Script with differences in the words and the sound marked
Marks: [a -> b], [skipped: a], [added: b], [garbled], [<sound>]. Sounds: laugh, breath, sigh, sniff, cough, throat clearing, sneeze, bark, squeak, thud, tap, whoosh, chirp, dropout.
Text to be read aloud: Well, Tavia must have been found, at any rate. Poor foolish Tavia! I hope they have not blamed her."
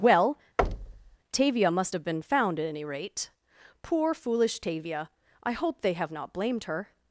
Well, [thud] Tavia must have been found, at any rate. Poor foolish Tavia! I hope they have not blamed her."